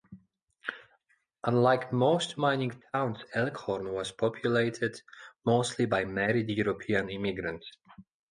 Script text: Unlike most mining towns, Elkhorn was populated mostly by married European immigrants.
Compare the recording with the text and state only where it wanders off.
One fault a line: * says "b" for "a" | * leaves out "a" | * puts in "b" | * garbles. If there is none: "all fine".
all fine